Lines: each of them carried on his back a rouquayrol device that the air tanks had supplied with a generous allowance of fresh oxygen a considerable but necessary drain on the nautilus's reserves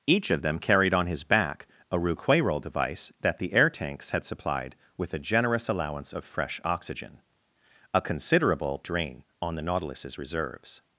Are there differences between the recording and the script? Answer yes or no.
yes